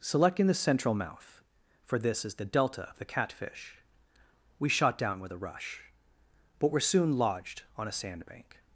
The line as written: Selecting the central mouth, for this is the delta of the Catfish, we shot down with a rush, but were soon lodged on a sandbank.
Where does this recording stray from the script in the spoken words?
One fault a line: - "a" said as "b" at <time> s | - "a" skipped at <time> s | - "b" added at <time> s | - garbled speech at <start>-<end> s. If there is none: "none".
none